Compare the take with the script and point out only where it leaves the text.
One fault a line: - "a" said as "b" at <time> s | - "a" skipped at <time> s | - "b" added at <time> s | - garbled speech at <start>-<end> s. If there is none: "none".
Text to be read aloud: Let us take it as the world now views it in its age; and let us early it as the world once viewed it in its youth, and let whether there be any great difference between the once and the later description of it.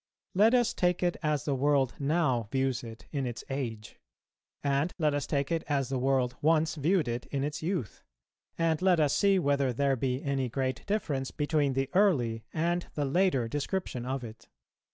- "early" said as "take" at 5.3 s
- "us see" added at 9.0 s
- "once" said as "early" at 11.9 s